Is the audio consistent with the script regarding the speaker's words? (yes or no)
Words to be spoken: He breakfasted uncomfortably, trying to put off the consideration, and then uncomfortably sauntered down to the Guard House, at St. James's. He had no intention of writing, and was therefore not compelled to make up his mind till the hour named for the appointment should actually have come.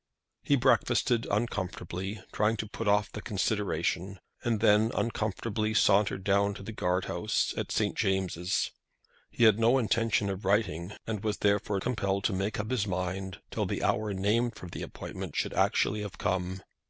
no